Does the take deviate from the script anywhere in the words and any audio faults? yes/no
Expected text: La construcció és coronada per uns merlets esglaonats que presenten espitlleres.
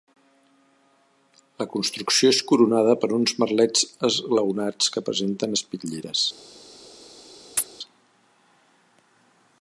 yes